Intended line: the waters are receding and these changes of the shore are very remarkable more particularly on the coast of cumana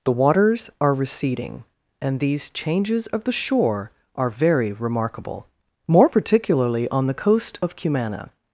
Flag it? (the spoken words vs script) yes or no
no